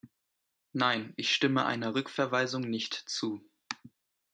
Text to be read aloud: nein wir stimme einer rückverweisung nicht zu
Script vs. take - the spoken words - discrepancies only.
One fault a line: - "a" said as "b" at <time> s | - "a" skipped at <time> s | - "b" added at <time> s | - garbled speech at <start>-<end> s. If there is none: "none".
- "wir" said as "ich" at 1.1 s